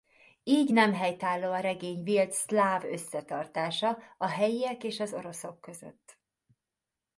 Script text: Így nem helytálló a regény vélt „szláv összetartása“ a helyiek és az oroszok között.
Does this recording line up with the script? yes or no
yes